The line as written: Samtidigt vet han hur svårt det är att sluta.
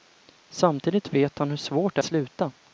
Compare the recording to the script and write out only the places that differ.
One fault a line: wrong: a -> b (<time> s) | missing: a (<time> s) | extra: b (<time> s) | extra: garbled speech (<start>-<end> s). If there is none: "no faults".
missing: är att (2.0 s)